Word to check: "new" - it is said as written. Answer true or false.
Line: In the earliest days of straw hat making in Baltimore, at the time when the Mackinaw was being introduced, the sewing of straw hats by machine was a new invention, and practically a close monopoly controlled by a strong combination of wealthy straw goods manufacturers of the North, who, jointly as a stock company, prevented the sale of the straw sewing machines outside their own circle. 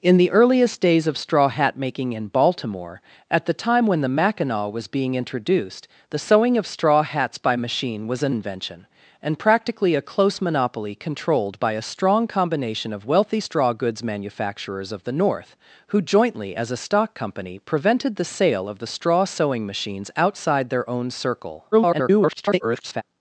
false